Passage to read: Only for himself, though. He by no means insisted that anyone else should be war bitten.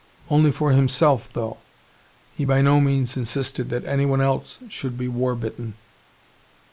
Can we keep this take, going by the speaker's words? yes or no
yes